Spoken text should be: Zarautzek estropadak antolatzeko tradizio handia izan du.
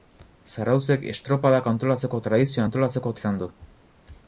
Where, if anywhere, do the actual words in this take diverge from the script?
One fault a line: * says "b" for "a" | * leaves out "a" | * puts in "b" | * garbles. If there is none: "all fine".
* says "antolatzeko" for "handia"